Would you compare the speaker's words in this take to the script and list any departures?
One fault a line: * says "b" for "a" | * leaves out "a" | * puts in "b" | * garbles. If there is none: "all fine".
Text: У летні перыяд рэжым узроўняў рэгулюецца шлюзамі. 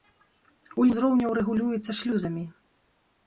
* leaves out "летні перыяд рэжым"